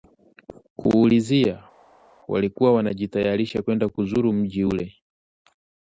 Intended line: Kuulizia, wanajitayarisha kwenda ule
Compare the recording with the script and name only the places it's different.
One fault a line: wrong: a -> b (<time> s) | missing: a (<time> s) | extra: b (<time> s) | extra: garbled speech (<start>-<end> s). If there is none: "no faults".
extra: walikuwa (2.3 s)
extra: kuzuru mji (3.9 s)